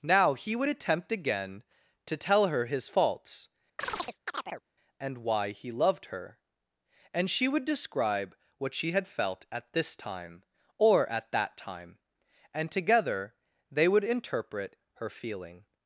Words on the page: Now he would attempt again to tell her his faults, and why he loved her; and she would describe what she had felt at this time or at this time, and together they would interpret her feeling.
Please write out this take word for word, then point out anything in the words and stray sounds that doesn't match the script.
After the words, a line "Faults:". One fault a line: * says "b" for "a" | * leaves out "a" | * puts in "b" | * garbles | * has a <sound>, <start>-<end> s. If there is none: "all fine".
Now he would attempt again to tell her his faults, and why he loved her; and she would describe what she had felt at this time or at that time, and together they would interpret her feeling.
Faults:
* has a chirp, 3.8-4.6 s
* says "that" for "this"